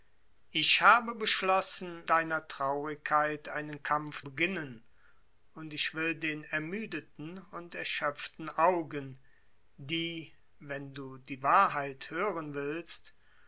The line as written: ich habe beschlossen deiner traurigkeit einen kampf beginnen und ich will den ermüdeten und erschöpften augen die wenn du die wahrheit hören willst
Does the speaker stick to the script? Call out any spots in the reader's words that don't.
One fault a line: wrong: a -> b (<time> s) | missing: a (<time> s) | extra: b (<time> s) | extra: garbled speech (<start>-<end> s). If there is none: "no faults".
no faults